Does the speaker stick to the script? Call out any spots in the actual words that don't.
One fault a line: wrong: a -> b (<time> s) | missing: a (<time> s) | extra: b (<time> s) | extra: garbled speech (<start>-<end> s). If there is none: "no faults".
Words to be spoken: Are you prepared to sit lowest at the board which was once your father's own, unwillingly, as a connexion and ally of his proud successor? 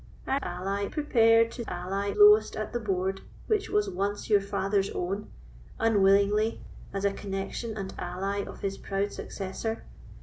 wrong: you -> ally (0.4 s)
wrong: sit -> ally (1.7 s)